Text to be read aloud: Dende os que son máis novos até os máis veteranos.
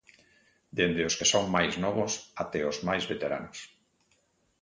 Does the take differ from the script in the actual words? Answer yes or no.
no